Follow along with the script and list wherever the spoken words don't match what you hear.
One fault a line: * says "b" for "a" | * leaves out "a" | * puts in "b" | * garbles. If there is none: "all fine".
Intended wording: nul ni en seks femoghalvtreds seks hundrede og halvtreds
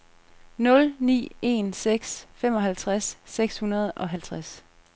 all fine